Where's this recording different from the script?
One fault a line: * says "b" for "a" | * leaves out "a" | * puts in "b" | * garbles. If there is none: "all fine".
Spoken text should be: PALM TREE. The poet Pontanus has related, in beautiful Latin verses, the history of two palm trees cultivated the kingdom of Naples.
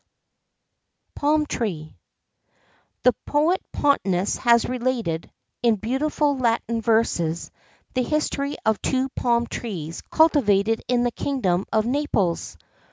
* puts in "in"